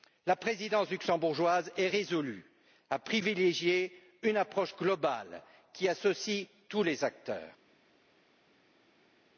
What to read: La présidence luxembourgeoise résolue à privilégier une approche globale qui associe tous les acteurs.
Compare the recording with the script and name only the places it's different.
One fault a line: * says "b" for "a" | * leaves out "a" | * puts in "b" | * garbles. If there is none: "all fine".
* puts in "est"